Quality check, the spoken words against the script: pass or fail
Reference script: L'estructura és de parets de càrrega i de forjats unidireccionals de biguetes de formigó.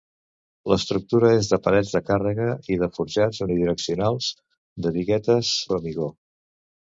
fail